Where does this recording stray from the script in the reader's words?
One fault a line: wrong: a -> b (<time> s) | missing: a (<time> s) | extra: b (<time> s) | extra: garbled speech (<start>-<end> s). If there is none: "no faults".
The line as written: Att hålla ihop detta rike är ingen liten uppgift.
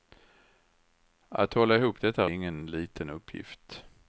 missing: rike (2.3 s)